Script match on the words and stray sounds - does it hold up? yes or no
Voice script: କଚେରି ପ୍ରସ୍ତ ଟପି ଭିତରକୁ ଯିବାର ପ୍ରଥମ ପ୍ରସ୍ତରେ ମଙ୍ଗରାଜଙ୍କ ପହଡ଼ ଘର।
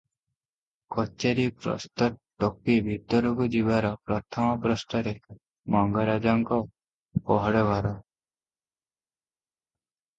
yes